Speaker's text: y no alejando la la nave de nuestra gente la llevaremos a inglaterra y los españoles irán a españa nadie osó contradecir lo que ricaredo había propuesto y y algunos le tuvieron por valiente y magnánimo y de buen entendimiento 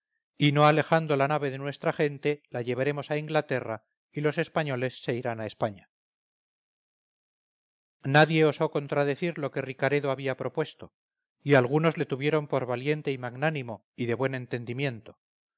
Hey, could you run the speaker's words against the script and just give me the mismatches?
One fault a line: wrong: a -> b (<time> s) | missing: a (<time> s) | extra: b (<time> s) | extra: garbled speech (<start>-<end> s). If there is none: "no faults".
missing: la (1.3 s)
extra: se (5.0 s)
missing: y (11.6 s)